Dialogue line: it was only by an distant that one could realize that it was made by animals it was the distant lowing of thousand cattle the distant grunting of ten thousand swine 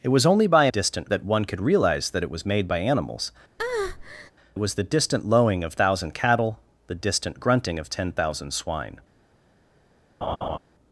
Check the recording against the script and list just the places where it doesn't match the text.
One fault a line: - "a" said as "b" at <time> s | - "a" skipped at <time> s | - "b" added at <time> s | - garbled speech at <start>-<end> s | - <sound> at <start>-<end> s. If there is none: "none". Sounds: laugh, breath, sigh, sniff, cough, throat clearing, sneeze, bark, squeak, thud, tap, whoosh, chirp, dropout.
- breath at 3.6-4.3 s
- laugh at 10.2-10.6 s